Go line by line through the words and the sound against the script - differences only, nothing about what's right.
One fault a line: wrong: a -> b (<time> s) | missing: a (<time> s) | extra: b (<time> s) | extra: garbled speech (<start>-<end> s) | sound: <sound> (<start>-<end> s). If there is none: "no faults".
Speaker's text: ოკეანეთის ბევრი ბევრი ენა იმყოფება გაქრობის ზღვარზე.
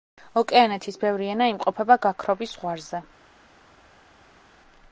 missing: ბევრი (1.3 s)